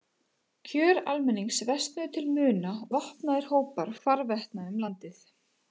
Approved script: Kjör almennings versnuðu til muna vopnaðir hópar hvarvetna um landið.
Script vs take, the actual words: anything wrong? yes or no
no